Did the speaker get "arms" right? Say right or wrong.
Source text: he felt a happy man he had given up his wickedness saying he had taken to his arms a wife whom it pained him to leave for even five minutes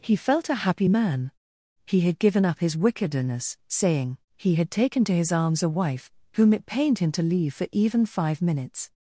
right